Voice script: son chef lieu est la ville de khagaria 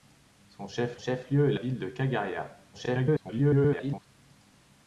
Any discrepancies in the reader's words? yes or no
yes